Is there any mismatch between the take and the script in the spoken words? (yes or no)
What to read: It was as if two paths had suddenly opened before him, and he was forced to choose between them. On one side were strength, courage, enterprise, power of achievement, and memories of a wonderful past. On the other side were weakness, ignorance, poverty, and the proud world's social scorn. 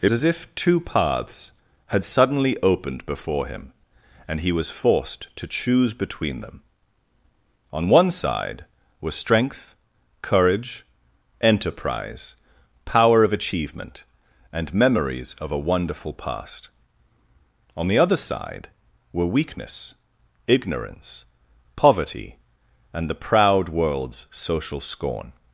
yes